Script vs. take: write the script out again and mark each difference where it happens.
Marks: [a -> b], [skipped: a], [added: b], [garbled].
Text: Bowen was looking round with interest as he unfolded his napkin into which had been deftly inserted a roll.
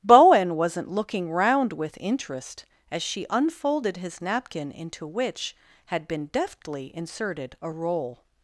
Bowen [was -> wasn't] looking round with interest as [he -> she] unfolded his napkin into which had been deftly inserted a roll.